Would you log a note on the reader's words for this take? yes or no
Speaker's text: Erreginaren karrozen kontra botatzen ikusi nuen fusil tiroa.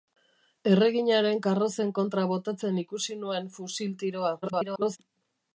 yes